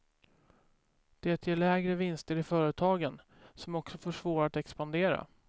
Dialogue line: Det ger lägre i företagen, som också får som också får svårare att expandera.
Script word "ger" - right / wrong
right